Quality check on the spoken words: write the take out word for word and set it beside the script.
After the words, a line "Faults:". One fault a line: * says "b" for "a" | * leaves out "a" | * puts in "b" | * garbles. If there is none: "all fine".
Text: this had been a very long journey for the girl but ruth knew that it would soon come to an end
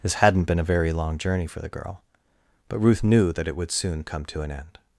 this hadn't been a very long journey for the girl but ruth knew that it would soon come to an end
Faults:
* says "hadn't" for "had"